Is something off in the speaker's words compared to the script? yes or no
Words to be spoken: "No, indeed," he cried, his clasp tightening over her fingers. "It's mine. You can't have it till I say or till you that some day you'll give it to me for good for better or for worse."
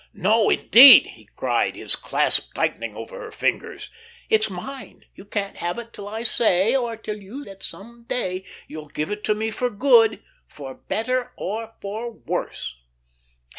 no